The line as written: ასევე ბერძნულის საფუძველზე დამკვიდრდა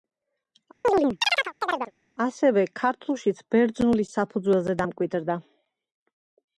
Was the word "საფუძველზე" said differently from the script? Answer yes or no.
no